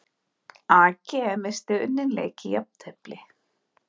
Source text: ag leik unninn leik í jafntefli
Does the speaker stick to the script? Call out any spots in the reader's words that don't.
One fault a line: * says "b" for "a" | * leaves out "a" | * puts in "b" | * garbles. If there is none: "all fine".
* says "missti" for "leik"